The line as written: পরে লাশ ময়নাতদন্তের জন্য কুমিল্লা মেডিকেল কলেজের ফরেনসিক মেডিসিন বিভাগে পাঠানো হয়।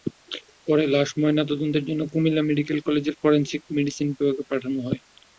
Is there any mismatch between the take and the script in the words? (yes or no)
no